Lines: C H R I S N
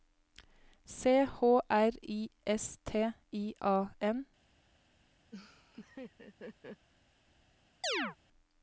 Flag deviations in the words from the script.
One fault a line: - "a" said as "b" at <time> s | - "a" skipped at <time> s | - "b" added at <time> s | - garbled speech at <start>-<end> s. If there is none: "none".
- "T I A" added at 2.8 s